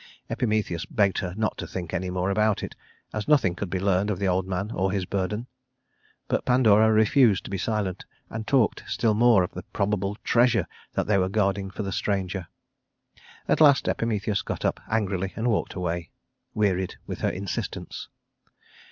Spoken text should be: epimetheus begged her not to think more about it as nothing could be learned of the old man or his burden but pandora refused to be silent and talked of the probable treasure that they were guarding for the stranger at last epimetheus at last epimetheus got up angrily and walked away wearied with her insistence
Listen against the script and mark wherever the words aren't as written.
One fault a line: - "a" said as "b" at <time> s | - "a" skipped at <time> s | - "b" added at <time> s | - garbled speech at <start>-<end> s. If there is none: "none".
- "any" added at 1.9 s
- "still more" added at 8.9 s
- "at last epimetheus" skipped at 14.4 s